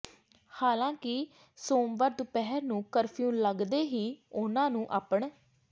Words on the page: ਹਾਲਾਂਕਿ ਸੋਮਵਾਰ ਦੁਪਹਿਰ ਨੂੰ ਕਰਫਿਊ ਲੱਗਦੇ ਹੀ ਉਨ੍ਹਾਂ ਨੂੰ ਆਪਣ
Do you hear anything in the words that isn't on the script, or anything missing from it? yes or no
no